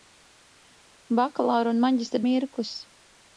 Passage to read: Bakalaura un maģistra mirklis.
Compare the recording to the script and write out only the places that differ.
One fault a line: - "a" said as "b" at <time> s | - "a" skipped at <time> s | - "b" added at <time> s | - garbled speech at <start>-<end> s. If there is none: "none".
none